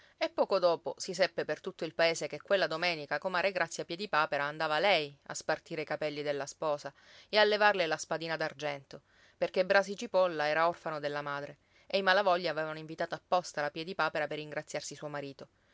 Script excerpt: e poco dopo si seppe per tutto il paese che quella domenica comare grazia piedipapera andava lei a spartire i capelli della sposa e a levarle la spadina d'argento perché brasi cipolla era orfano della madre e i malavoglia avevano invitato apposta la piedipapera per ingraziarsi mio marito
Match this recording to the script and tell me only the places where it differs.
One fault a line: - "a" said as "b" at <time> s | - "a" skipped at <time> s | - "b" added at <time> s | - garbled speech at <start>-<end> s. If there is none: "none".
- "mio" said as "suo" at 14.9 s